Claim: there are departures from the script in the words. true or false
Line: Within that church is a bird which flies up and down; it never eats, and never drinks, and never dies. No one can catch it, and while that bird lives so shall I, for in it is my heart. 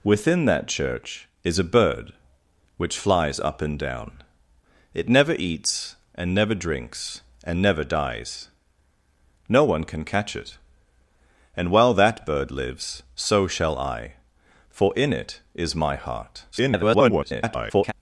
true